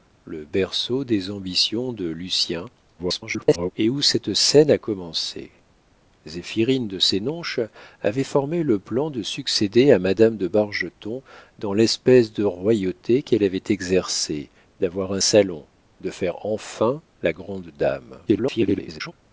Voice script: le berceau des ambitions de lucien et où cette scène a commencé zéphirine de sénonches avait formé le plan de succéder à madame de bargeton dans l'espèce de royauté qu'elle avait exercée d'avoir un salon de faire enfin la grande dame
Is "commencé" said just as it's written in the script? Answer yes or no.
yes